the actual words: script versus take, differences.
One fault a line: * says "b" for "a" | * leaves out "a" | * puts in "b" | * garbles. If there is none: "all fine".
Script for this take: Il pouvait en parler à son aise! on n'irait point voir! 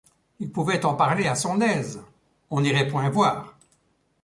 all fine